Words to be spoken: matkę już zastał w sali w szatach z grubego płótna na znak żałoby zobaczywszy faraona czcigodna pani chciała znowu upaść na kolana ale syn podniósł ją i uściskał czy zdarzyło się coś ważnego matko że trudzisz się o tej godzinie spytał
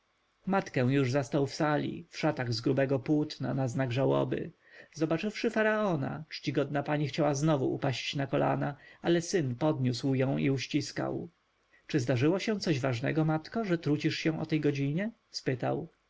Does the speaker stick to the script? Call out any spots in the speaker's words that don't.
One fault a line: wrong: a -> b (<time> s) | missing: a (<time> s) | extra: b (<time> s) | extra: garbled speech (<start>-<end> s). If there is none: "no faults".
no faults